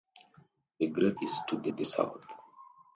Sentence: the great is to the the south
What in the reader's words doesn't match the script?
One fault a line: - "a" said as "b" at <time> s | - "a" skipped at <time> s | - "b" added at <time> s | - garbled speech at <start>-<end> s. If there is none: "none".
none